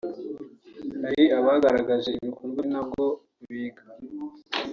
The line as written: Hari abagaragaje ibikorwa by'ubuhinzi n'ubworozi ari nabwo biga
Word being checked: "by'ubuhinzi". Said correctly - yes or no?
no